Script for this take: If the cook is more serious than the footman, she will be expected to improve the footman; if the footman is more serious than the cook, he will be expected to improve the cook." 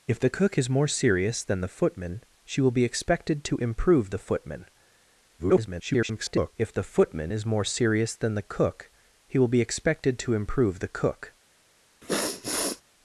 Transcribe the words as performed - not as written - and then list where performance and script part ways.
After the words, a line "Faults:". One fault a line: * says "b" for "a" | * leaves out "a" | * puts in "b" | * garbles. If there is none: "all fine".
If the cook is more serious than the footman, she will be expected to improve the footman; [garbled] if the footman is more serious than the cook, he will be expected to improve the cook."
Faults:
* garbles